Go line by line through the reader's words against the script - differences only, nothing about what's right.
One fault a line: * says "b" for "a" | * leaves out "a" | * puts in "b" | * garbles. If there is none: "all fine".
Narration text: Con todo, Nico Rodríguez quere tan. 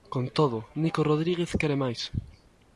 * says "máis" for "tan"